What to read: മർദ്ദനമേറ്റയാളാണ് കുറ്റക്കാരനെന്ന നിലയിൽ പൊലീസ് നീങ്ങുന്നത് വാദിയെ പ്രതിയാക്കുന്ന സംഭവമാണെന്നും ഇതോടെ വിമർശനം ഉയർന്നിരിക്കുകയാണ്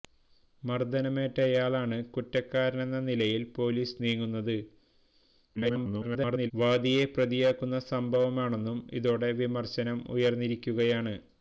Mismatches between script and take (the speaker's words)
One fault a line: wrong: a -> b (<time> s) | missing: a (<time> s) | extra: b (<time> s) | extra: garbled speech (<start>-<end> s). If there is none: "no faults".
extra: garbled speech (5.6-6.5 s)